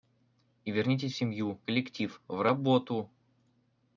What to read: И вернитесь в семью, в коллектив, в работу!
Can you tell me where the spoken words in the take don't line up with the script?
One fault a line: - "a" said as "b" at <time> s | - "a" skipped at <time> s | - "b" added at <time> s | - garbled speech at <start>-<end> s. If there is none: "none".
- "в" skipped at 1.6 s